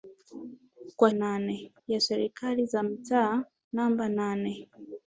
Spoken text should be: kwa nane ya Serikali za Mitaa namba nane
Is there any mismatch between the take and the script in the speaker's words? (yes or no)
no